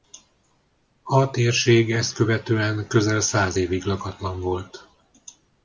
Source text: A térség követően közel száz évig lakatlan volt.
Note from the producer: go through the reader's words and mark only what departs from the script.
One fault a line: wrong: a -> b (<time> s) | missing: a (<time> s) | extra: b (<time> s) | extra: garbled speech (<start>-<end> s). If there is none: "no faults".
extra: ezt (1.9 s)